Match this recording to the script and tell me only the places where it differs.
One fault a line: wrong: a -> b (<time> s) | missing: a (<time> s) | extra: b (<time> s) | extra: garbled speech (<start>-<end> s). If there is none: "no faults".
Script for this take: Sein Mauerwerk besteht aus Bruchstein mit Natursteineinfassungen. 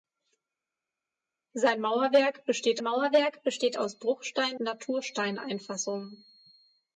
extra: Mauerwerk besteht (2.8 s)
missing: mit (4.6 s)